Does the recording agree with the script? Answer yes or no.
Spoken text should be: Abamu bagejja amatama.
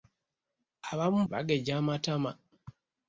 yes